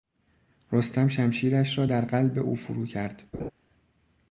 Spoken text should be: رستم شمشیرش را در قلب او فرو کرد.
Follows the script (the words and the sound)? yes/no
no